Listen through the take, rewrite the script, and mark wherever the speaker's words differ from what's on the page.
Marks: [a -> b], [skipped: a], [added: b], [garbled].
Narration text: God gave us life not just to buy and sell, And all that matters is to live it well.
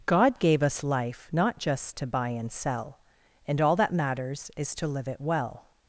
God gave us life not just to buy and sell, And all that matters is to live it well.